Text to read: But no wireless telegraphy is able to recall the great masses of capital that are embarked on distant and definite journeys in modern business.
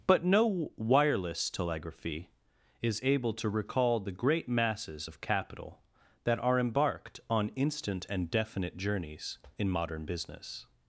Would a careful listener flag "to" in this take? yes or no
no